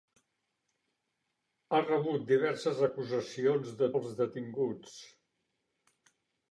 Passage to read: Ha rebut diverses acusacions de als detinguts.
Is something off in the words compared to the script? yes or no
no